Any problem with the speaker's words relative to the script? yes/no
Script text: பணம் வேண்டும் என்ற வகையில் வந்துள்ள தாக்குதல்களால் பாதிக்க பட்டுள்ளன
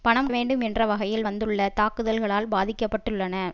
no